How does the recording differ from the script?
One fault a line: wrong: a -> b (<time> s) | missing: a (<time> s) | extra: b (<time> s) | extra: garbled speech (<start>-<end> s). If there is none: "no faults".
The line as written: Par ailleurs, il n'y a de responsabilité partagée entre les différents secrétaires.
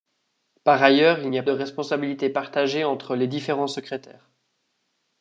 no faults